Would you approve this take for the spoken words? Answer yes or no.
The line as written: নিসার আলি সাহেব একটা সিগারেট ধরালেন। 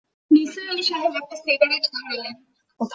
yes